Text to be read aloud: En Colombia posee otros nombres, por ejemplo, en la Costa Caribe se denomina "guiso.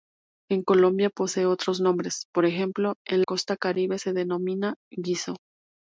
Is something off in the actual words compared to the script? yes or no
yes